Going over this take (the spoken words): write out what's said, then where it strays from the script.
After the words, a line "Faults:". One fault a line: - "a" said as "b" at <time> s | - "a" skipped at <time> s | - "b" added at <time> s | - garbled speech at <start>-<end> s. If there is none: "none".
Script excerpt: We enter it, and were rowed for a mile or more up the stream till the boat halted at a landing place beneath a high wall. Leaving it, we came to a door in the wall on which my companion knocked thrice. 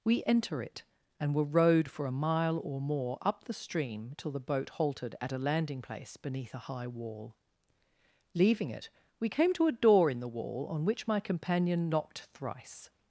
We enter it, and were rowed for a mile or more up the stream till the boat halted at a landing place beneath a high wall. Leaving it, we came to a door in the wall on which my companion knocked thrice.
Faults:
none